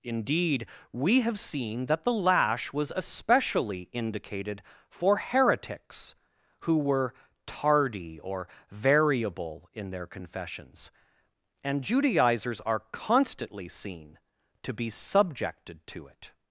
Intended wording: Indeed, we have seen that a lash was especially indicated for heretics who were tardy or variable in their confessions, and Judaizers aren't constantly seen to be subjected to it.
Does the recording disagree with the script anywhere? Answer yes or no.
yes